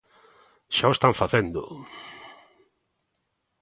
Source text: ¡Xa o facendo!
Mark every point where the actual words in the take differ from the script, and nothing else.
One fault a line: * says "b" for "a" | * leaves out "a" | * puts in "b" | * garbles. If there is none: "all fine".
* puts in "están"